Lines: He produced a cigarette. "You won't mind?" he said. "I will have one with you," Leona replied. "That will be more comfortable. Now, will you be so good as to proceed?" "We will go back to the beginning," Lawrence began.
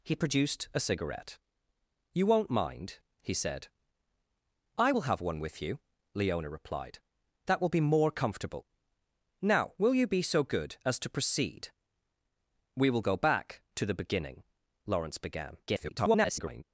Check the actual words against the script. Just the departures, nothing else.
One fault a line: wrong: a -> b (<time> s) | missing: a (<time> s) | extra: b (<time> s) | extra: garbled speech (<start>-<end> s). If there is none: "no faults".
extra: garbled speech (15.7-16.6 s)